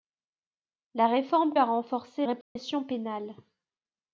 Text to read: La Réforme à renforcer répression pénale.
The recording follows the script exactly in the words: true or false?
true